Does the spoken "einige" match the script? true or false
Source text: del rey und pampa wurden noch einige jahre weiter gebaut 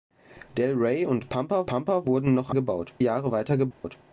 false